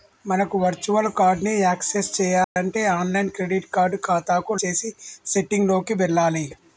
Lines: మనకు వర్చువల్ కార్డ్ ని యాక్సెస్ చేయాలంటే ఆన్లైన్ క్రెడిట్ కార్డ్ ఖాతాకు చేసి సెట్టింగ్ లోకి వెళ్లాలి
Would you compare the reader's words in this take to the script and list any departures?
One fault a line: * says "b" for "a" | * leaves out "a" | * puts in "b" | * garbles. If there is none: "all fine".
all fine